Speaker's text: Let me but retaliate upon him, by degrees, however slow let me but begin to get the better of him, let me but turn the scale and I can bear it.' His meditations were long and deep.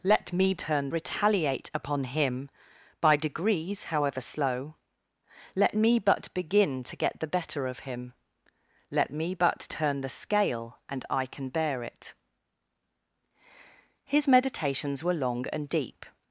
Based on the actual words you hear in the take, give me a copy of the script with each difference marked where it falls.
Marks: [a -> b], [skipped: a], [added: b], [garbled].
Let me [but -> turn] retaliate upon him, by degrees, however slow let me but begin to get the better of him, let me but turn the scale and I can bear it.' His meditations were long and deep.